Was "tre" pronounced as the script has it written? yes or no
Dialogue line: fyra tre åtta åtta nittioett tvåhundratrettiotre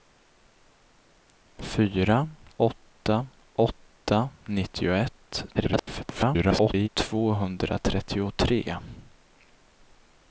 no